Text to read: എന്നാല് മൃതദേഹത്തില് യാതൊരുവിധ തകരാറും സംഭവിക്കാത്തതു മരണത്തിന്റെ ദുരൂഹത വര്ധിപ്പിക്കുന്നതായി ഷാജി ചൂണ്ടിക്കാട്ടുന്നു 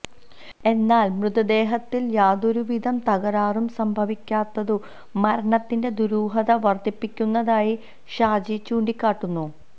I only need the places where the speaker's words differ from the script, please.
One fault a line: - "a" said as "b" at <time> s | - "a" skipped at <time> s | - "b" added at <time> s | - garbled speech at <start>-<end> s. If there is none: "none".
none